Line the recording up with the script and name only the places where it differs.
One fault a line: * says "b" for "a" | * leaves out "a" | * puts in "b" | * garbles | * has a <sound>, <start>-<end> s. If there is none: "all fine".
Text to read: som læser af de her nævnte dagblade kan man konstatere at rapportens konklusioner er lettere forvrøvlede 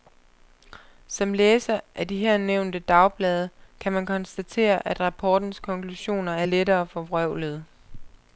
all fine